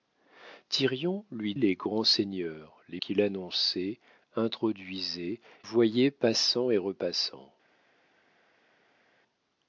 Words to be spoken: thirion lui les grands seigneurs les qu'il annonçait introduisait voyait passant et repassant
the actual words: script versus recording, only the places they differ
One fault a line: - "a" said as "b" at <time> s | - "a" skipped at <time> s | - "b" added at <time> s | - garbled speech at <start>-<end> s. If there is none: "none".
none